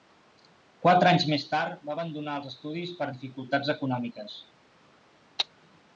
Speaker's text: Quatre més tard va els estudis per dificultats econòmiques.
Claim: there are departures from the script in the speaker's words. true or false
true